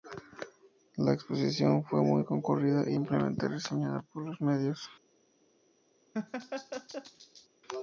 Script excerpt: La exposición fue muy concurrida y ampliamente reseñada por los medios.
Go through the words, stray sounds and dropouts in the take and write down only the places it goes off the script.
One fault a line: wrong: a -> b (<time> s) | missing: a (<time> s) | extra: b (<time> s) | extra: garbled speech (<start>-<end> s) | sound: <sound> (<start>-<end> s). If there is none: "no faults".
sound: laugh (6.1-7.5 s)